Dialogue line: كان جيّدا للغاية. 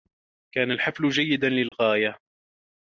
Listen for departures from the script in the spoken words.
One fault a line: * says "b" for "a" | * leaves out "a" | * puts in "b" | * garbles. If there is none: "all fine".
* puts in "الحفل"